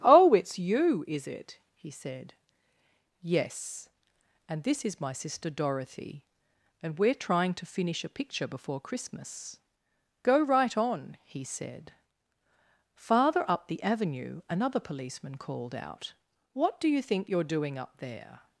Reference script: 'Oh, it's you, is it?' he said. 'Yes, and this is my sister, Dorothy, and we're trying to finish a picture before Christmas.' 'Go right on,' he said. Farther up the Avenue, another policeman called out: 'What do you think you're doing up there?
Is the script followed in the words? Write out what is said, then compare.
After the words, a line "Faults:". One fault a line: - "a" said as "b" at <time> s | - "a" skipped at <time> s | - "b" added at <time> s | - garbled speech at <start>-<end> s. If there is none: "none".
'Oh, it's you, is it?' he said. 'Yes, and this is my sister, Dorothy, and we're trying to finish a picture before Christmas.' 'Go right on,' he said. Farther up the Avenue, another policeman called out: 'What do you think you're doing up there?
Faults:
none